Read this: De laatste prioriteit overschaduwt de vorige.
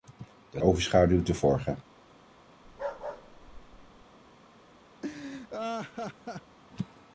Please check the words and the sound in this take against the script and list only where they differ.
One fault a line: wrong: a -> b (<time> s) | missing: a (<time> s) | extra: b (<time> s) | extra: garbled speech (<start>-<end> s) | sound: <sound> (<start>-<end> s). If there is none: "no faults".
missing: laatste prioriteit (0.6 s)
sound: bark (2.6-4.1 s)
sound: laugh (5.0-6.6 s)